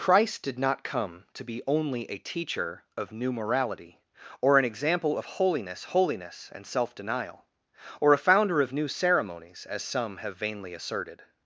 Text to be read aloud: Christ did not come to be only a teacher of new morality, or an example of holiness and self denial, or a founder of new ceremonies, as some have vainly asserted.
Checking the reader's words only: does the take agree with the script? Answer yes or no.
no